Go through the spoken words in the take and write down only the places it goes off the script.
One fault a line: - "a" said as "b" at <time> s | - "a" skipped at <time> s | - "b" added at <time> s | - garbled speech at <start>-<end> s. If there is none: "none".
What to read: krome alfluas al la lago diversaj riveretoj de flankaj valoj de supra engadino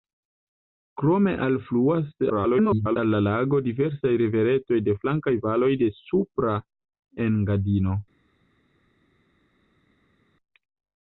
- garbled speech at 2.3-3.0 s